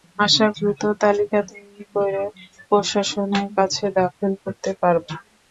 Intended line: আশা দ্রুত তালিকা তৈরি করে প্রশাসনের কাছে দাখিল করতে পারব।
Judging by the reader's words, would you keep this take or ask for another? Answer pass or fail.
pass